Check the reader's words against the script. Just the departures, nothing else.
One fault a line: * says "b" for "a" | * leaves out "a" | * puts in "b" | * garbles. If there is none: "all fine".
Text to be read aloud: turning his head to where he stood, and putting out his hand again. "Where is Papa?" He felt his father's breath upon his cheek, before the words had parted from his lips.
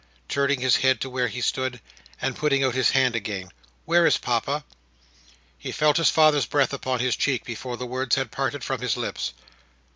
all fine